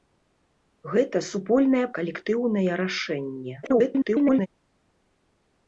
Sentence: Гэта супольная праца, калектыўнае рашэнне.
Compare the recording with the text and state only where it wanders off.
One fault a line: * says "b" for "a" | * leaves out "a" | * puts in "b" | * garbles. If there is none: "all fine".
* leaves out "праца"
* garbles